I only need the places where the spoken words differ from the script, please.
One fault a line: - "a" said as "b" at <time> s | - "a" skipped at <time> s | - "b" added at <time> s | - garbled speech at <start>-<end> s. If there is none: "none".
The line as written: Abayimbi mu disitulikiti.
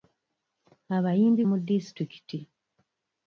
none